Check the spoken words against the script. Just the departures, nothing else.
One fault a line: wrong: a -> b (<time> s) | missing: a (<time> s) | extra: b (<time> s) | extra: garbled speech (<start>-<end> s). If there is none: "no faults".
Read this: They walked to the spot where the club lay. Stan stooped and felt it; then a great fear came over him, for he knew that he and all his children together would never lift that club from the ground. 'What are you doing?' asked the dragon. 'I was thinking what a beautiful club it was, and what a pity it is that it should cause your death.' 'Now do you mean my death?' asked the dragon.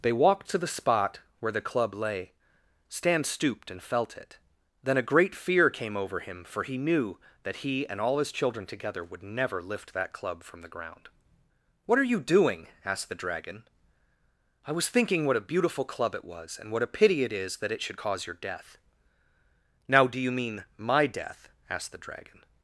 no faults